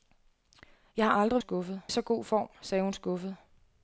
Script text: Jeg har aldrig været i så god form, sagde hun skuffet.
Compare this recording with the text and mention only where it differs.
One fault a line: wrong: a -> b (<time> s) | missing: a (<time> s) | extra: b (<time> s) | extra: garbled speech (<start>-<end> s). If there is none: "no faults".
wrong: været -> skuffet (1.4 s)